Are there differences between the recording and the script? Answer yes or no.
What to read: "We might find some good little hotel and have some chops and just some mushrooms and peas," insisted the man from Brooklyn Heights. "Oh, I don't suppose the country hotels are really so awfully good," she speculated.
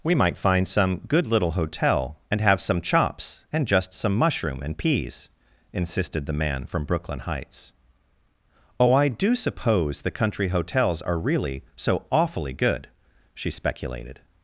yes